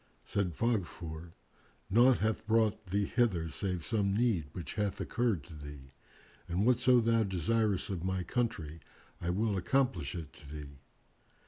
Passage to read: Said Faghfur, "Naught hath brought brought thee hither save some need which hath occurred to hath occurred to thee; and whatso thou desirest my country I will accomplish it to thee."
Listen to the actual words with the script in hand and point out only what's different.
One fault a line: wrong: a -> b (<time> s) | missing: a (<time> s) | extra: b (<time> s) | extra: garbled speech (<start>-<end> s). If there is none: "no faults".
missing: brought (2.9 s)
missing: hath occurred to (5.5 s)
extra: of (7.9 s)